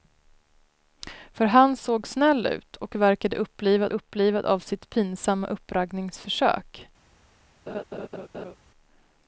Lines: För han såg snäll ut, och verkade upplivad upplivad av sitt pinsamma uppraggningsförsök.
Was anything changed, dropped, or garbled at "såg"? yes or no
no